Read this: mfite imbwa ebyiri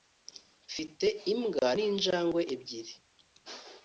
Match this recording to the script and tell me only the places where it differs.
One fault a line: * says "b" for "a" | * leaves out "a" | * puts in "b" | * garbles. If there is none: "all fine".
* puts in "ninjangwe"